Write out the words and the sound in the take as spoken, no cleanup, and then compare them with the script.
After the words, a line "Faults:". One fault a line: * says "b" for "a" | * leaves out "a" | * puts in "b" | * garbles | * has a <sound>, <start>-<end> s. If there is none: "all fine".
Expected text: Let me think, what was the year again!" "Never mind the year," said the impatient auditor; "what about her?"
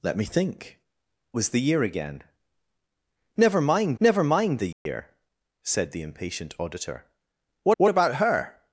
Let me think, was the year again!" "Never mind never mind the year," said the impatient auditor; "what what about her?"
Faults:
* leaves out "what"
* puts in "never mind"
* has a dropout, 4.7-4.9 s
* puts in "what"